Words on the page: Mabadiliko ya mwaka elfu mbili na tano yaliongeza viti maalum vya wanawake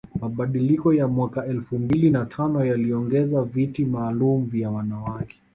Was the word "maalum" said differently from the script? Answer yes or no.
no